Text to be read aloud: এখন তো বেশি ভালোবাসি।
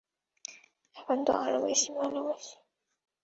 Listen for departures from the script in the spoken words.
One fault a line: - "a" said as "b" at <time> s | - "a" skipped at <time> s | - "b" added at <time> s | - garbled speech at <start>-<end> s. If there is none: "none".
- "আরো" added at 1.4 s